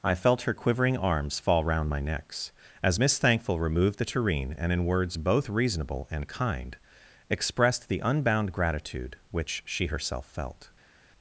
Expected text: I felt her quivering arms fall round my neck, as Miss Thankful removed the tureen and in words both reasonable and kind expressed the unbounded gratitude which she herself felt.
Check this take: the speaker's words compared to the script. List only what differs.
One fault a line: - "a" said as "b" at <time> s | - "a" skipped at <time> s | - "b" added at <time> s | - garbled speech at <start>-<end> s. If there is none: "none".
- "neck" said as "necks" at 2.0 s
- "unbounded" said as "unbound" at 8.0 s